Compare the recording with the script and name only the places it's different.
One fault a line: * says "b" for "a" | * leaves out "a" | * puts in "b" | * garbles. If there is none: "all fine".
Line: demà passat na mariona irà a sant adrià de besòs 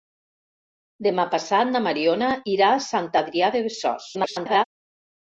* garbles